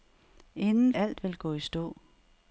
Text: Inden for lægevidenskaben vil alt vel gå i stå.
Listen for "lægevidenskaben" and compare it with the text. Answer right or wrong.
wrong